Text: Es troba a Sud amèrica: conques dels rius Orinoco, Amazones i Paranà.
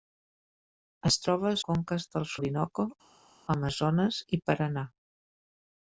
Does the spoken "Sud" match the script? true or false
false